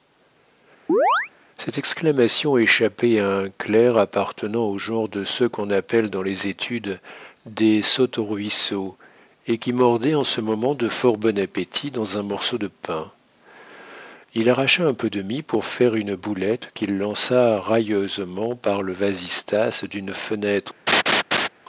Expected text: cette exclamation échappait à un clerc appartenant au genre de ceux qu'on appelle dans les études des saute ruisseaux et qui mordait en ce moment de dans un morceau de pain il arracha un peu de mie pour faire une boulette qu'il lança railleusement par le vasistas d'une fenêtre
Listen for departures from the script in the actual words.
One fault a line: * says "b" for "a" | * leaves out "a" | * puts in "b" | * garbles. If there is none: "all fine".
* puts in "fort bon appétit"